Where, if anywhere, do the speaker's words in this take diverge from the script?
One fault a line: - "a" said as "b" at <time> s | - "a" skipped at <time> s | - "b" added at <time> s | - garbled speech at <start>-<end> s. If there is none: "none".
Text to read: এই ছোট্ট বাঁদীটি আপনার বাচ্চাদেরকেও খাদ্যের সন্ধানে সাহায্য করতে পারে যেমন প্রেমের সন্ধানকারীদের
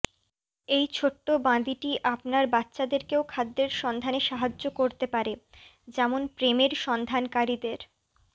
none